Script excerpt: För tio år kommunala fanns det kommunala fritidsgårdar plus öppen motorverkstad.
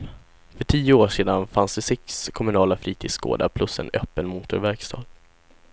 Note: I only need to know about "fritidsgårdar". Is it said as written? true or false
true